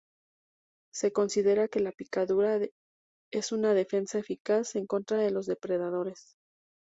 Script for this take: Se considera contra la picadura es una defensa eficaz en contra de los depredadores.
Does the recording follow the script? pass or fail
fail